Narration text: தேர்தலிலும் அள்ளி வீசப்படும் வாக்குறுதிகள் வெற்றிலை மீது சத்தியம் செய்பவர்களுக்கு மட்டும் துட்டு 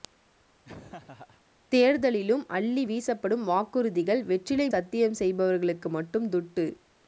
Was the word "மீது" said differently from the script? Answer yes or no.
yes